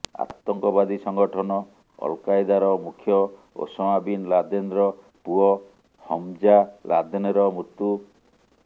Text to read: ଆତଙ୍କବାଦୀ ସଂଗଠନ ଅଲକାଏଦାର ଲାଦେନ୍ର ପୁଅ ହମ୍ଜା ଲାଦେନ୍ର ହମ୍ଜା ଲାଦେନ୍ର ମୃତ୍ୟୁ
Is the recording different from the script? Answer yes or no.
yes